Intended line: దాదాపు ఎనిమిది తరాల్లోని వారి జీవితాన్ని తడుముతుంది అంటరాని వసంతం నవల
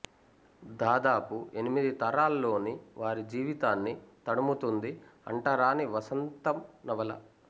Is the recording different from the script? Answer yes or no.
no